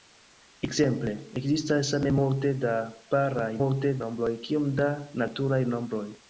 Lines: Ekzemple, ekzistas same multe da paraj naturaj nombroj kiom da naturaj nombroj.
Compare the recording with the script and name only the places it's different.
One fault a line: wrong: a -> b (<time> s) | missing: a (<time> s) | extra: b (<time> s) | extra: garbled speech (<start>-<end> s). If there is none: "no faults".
wrong: naturaj -> multe (3.6 s)